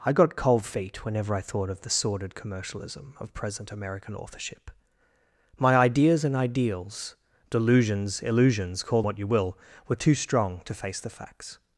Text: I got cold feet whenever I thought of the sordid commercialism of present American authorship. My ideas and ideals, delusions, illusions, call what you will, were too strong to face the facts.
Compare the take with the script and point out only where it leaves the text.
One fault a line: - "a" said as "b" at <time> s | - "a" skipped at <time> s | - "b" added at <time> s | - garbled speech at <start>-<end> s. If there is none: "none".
none